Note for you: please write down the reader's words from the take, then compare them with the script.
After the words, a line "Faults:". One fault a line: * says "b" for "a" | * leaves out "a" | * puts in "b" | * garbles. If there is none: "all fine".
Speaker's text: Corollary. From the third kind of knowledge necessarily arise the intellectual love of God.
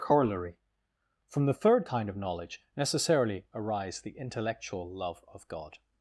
Corollary. From the third kind of knowledge necessarily arise the intellectual love of God.
Faults:
all fine